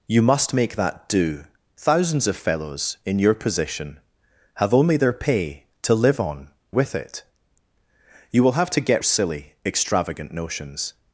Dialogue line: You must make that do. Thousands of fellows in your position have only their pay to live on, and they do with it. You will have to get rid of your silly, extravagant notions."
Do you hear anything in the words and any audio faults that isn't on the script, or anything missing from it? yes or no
yes